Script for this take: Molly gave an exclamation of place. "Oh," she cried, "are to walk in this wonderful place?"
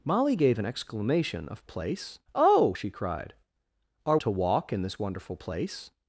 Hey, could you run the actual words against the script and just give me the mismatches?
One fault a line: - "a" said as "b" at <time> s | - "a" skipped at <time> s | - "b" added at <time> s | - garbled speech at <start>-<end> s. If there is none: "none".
none